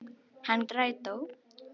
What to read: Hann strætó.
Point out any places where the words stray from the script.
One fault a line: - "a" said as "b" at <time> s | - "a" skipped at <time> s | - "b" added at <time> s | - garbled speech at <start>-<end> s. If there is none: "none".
none